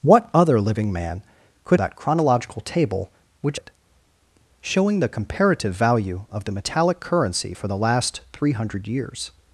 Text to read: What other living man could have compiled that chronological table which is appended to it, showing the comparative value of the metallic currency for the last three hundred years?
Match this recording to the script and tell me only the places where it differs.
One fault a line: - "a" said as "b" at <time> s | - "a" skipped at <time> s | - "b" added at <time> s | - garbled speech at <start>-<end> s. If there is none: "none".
- "have compiled" skipped at 1.8 s
- "is appended to" skipped at 3.6 s